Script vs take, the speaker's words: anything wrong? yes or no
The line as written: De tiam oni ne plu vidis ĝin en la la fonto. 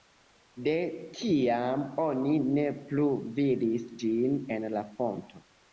yes